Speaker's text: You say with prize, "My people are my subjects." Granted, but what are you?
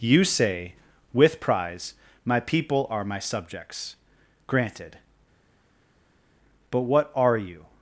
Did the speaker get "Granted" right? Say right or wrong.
right